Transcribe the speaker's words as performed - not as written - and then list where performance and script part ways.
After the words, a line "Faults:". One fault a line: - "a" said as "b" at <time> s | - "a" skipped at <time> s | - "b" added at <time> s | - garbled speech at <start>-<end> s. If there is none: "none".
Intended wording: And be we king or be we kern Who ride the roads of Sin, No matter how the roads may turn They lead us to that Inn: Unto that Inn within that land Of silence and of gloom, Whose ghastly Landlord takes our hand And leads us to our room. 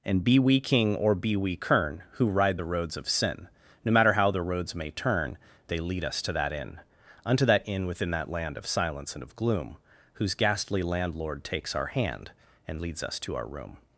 And be we king or be we kern Who ride the roads of Sin, No matter how the roads may turn They lead us to that Inn: Unto that Inn within that land Of silence and of gloom, Whose ghastly Landlord takes our hand And leads us to our room.
Faults:
none